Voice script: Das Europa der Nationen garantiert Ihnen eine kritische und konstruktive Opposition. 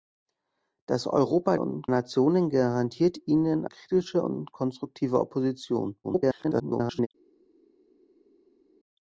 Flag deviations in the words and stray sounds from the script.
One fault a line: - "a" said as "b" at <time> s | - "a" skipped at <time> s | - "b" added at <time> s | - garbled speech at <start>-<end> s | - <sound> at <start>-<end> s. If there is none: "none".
- "der" said as "und" at 1.6 s
- "eine" skipped at 3.7 s
- garbled speech at 6.0-7.1 s